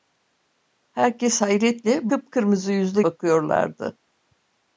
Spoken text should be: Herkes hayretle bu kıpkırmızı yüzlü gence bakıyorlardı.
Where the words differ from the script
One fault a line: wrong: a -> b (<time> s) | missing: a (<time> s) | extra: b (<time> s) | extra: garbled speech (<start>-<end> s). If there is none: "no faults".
missing: bu (2.1 s)
missing: gence (3.0 s)